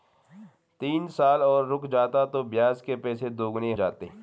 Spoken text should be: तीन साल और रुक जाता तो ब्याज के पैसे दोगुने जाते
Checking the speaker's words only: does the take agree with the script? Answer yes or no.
yes